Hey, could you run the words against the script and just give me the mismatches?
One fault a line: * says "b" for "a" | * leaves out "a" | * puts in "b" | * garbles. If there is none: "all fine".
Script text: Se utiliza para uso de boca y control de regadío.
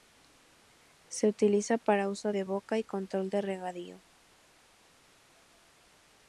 all fine